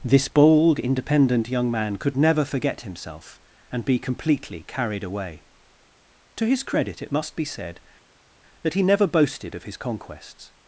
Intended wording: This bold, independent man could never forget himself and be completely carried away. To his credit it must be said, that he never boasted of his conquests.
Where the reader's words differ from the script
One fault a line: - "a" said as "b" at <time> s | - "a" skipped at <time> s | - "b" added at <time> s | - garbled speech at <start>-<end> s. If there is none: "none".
- "young" added at 1.5 s